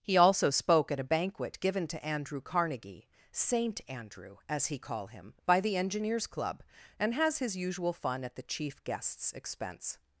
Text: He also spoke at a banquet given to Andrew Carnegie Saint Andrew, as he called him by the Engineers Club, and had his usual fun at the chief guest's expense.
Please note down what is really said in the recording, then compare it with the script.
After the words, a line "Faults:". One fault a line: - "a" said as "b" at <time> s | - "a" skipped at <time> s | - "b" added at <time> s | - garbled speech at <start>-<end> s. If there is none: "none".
He also spoke at a banquet given to Andrew Carnegie Saint Andrew, as he call him by the Engineers Club, and has his usual fun at the chief guest's expense.
Faults:
- "called" said as "call" at 4.8 s
- "had" said as "has" at 7.1 s